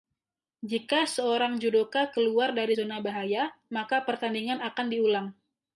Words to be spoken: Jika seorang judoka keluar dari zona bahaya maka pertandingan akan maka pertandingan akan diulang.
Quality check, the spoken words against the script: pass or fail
fail